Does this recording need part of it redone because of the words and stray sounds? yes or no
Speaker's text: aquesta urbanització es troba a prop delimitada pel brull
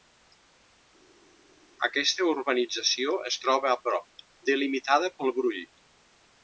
no